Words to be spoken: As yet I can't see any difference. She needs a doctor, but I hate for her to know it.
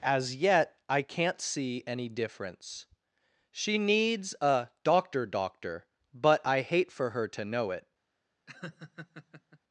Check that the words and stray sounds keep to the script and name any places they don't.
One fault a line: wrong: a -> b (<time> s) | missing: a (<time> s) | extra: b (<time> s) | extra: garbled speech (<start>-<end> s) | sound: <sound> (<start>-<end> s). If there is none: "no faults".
extra: doctor (5.2 s)
sound: laugh (8.5-9.6 s)